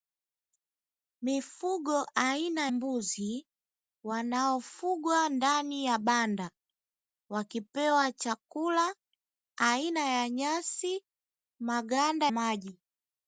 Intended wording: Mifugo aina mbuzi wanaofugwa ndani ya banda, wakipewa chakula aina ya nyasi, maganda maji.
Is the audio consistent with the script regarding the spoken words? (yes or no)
yes